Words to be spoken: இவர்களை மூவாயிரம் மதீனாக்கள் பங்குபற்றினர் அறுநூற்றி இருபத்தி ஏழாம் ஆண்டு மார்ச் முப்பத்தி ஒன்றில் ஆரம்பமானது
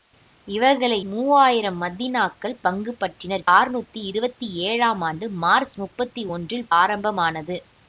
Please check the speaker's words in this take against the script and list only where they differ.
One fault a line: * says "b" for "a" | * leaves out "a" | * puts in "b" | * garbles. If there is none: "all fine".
all fine